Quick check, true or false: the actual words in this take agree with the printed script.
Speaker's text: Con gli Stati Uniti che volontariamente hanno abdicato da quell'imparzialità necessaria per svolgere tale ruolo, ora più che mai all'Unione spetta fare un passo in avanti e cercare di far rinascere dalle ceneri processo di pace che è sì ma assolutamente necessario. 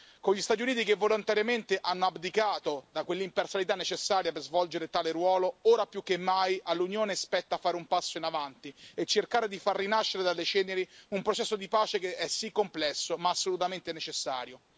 false